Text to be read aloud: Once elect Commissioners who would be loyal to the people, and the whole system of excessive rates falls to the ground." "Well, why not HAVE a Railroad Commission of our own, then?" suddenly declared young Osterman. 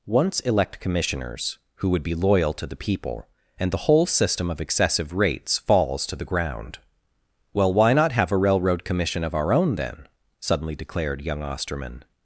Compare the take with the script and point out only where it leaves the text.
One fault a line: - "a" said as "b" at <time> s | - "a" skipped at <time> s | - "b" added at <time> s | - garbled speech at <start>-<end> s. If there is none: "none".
none